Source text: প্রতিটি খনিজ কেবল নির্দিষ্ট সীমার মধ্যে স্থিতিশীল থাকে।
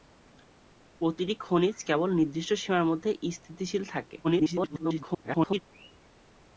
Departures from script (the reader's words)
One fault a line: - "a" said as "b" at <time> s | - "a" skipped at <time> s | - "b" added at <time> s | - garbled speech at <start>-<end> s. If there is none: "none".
- garbled speech at 4.2-5.6 s